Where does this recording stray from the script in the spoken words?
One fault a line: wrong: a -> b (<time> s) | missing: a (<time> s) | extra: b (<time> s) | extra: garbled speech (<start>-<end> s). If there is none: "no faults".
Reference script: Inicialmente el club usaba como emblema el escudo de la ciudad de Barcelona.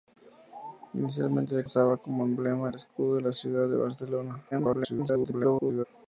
missing: club (1.6 s)
extra: garbled speech (4.5-5.8 s)